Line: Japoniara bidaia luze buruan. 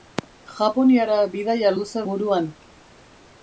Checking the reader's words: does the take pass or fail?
pass